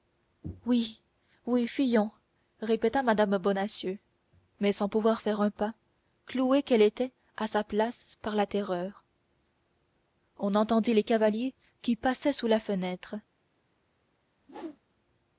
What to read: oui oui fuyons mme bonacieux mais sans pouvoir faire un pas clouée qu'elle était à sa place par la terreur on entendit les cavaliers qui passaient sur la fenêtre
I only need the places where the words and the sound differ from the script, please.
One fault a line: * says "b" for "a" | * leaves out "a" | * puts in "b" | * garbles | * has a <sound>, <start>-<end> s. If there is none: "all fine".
* puts in "répéta"
* says "sous" for "sur"
* has a whoosh, 14.4-14.8 s